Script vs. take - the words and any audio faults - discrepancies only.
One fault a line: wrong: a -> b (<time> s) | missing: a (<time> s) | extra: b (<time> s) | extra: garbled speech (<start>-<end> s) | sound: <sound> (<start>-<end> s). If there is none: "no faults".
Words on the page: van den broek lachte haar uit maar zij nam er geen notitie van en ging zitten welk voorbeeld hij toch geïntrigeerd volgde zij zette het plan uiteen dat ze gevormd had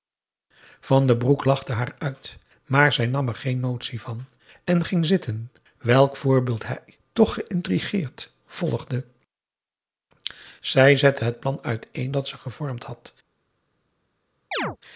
sound: chirp (14.5-14.8 s)